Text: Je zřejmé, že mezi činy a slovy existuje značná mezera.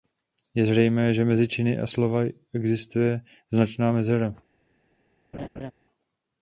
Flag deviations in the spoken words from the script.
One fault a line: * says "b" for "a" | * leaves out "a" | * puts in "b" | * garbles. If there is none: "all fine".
all fine